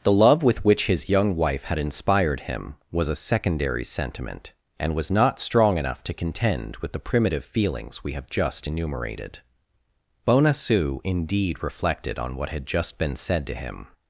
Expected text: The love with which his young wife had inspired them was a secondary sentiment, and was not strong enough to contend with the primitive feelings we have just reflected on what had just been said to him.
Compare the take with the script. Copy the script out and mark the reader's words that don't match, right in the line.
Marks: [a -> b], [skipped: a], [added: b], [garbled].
The love with which his young wife had inspired [them -> him] was a secondary sentiment, and was not strong enough to contend with the primitive feelings we have just [added: enumerated Bonacieux indeed] reflected on what had just been said to him.